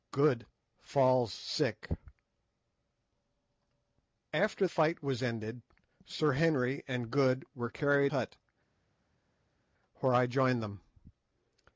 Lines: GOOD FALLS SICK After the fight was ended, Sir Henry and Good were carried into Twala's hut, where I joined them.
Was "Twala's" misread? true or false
true